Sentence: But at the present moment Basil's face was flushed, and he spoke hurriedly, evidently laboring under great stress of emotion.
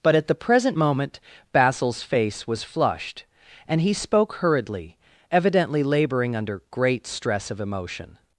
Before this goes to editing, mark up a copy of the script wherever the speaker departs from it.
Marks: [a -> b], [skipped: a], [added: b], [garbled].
But at the present moment Basil's face was flushed, and he spoke hurriedly, evidently laboring under great stress of emotion.